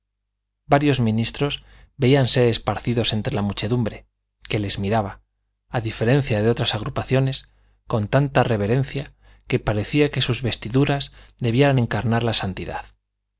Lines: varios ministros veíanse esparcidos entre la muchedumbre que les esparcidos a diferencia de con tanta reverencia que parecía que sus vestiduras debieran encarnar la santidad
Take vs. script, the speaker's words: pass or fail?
fail